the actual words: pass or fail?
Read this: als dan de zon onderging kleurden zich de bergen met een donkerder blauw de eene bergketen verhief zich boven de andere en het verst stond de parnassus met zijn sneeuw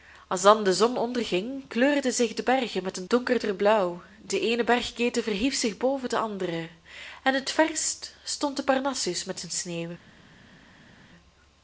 pass